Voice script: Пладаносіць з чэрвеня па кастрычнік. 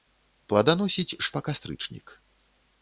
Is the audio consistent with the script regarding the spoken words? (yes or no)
no